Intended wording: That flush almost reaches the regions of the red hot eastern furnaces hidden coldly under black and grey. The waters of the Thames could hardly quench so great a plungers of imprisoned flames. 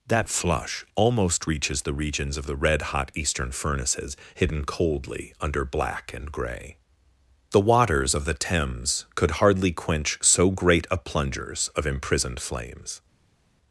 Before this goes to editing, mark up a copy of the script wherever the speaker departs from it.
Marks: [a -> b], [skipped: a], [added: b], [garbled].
That flush almost reaches the regions of the red hot eastern furnaces hidden coldly under black and grey. The waters of the Thames could hardly quench so great a plungers of imprisoned flames.